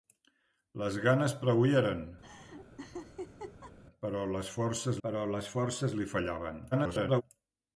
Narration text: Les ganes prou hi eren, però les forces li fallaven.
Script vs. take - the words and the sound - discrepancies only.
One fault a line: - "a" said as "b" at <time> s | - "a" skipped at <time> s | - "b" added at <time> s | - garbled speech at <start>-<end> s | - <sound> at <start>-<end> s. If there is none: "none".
- laugh at 2.2-3.8 s
- "però les forces" added at 5.1 s
- garbled speech at 6.7-7.2 s